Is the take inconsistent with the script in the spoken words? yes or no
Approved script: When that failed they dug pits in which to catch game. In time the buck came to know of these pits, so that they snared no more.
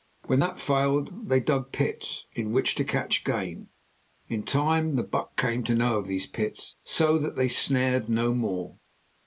no